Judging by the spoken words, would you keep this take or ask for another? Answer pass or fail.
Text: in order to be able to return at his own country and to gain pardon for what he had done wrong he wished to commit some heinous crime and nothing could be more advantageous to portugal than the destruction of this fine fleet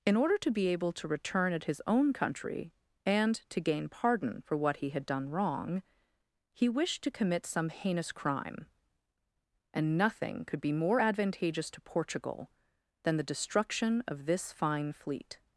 pass